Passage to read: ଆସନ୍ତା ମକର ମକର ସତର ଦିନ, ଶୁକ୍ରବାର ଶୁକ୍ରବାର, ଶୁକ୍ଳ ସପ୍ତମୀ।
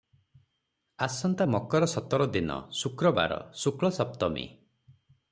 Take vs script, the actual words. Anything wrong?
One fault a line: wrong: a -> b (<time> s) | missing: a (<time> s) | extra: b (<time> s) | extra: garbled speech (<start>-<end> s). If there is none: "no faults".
missing: ମକର (1.9 s)
missing: ଶୁକ୍ରବାର (3.4 s)